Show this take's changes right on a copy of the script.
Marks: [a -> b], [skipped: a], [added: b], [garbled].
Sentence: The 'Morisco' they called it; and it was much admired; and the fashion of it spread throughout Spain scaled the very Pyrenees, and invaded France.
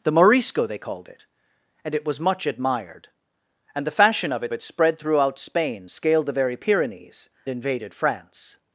The 'Morisco' they called it; and it was much admired; and the fashion of it [added: it] spread throughout Spain scaled the very Pyrenees, [skipped: and] invaded France.